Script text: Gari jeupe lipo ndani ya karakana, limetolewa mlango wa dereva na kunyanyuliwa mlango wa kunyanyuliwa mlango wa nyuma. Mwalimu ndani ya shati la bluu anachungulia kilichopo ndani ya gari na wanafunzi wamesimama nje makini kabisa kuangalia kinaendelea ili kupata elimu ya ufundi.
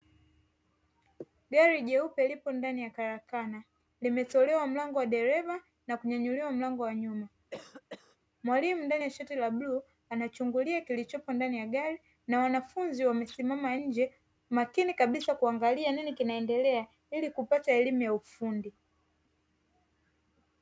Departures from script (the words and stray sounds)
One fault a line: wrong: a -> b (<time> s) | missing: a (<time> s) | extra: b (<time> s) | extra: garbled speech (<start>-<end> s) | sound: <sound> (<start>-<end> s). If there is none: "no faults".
missing: kunyanyuliwa mlango wa (6.9 s)
sound: cough (7.5-8.2 s)
extra: nini (15.9 s)